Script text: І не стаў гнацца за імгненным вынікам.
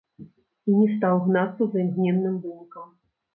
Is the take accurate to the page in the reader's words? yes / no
yes